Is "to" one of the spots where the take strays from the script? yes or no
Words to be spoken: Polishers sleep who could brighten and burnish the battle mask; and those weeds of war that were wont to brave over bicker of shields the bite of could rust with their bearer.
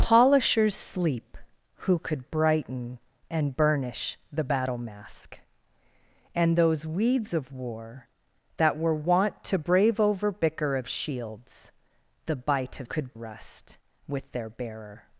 no